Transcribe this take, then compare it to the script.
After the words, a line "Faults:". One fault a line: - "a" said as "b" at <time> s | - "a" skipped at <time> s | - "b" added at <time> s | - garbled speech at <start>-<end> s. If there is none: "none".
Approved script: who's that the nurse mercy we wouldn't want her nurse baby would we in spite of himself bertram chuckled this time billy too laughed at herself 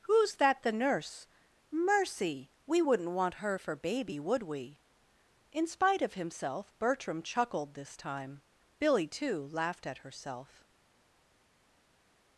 who's that the nurse mercy we wouldn't want her for baby would we in spite of himself bertram chuckled this time billy too laughed at herself
Faults:
- "nurse" said as "for" at 3.6 s